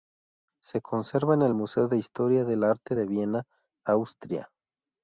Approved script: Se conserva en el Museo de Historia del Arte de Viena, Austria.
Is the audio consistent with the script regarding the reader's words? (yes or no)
yes